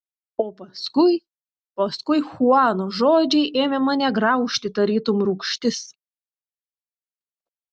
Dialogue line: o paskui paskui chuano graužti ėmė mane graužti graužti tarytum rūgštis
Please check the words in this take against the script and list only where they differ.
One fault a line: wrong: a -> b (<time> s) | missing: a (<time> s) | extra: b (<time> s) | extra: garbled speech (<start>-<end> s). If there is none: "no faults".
wrong: graužti -> žodžiai (3.0 s)
missing: graužti (4.8 s)